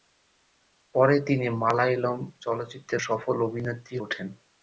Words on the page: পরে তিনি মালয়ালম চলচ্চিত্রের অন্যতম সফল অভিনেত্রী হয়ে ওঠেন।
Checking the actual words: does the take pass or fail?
fail